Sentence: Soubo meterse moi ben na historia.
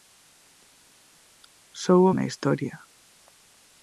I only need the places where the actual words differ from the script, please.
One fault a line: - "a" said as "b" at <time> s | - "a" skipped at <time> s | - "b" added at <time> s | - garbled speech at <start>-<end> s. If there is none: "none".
- "meterse moi ben" skipped at 2.1 s